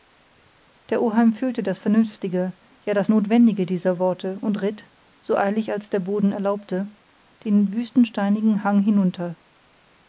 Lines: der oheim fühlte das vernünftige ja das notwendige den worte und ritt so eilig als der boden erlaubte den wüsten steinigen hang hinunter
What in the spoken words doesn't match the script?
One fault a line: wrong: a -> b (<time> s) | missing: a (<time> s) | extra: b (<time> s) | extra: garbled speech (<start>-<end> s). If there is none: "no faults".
wrong: den -> dieser (3.7 s)